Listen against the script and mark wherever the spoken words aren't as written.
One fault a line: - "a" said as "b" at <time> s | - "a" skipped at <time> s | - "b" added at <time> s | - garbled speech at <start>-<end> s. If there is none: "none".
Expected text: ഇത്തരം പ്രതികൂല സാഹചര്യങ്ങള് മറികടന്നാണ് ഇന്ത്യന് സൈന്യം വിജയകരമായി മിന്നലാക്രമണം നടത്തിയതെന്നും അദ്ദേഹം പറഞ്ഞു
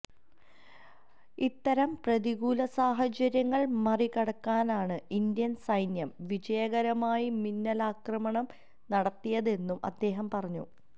none